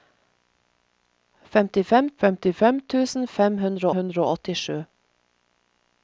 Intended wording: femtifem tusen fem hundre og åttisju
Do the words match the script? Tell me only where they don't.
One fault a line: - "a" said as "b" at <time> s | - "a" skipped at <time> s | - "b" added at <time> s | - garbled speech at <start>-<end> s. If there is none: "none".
- "femtifem" added at 2.2 s
- "hundre" added at 4.0 s